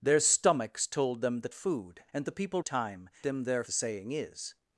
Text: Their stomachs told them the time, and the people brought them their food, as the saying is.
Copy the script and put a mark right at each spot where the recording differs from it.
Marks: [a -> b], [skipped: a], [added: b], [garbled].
Their stomachs told them the [time, -> food] and the people [brought -> time] them their [skipped: food, as] the saying is.